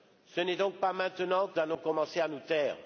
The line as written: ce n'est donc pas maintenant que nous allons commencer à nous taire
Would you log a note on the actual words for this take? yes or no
yes